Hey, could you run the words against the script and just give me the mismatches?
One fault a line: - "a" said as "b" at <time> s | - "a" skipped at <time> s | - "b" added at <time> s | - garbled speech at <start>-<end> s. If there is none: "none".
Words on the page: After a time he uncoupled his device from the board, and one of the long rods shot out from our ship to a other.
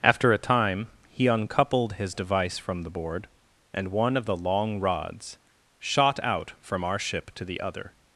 - "a" said as "the" at 7.4 s